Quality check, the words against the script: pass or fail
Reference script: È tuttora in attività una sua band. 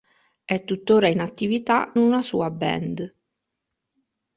pass